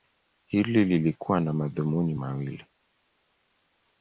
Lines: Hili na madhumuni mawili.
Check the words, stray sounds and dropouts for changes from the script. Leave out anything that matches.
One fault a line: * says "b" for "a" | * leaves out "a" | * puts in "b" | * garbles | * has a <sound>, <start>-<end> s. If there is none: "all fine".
* puts in "lilikuwa"